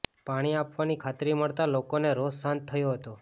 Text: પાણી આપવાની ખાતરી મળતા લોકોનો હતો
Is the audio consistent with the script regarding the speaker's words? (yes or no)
no